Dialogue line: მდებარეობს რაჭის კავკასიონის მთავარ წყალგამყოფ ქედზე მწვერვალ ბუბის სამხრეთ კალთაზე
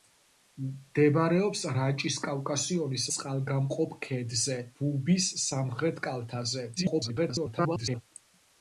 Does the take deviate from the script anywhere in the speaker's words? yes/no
yes